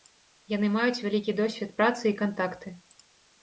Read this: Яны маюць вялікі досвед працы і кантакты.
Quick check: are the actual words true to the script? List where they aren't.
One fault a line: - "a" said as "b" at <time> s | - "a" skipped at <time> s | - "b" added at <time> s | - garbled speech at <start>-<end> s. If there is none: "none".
none